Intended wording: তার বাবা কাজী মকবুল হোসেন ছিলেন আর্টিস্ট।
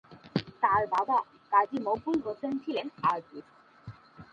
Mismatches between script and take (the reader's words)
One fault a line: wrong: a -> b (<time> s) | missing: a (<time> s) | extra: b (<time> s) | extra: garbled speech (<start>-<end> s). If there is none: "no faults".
no faults